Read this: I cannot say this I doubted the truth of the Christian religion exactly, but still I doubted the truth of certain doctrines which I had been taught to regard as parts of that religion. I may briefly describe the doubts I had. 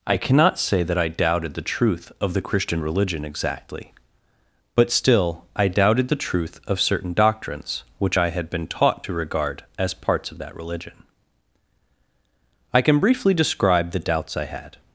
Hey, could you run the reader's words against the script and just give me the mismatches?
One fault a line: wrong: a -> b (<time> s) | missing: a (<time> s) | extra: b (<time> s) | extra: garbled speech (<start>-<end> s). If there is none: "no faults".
wrong: this -> that (0.8 s)
wrong: may -> can (12.8 s)